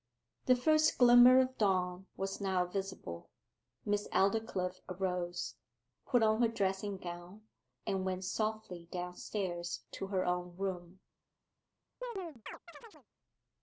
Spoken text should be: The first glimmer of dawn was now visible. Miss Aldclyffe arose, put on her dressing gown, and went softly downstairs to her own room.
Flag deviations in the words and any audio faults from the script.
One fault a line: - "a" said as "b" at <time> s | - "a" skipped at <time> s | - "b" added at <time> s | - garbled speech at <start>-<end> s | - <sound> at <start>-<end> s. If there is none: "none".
- chirp at 12.0-13.1 s